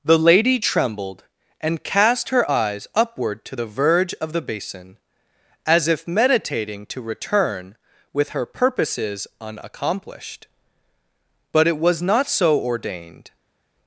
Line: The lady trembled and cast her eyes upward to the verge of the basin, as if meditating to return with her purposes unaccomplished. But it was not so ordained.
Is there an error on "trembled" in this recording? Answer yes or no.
no